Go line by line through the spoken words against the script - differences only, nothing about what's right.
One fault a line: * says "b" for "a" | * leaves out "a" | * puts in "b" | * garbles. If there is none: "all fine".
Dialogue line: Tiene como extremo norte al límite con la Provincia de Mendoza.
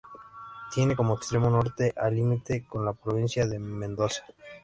all fine